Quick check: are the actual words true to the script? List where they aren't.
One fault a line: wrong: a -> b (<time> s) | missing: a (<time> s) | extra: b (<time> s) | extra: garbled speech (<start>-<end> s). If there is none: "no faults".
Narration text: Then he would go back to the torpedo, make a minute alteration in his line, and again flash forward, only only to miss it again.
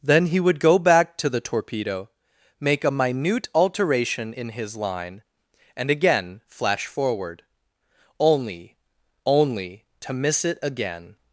no faults